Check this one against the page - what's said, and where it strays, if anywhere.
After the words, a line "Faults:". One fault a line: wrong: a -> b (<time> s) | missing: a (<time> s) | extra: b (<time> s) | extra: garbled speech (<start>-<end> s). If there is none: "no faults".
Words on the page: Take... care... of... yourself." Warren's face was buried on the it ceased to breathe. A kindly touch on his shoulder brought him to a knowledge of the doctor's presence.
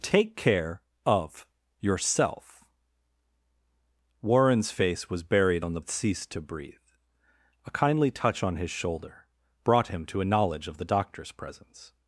Take... care... of... yourself." Warren's face was buried on the it ceased to breathe. A kindly touch on his shoulder brought him to a knowledge of the doctor's presence.
Faults:
no faults